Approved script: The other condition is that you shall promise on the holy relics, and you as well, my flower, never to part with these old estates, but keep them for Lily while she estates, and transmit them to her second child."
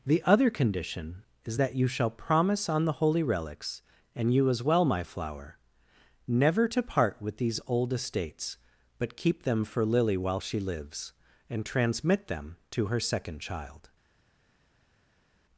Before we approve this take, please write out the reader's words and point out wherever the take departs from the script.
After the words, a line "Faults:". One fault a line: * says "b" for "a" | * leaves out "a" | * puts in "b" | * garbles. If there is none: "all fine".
The other condition is that you shall promise on the holy relics, and you as well, my flower, never to part with these old estates, but keep them for Lily while she lives, and transmit them to her second child."
Faults:
* says "lives" for "estates"